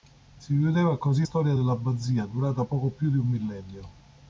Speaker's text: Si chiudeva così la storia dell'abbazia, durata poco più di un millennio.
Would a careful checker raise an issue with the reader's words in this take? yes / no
yes